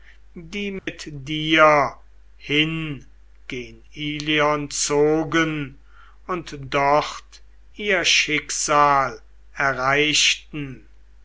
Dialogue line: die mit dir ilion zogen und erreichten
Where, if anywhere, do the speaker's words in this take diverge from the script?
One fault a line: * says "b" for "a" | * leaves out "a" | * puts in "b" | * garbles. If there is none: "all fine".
* puts in "hin gen"
* puts in "dort ihr schicksal"